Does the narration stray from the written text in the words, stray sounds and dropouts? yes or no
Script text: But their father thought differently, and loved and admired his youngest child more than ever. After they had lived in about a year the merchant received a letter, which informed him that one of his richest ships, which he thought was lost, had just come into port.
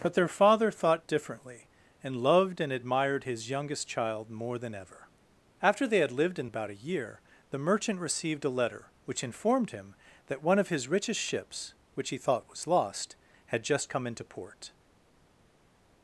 no